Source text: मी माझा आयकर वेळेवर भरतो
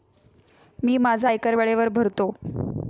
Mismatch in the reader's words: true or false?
false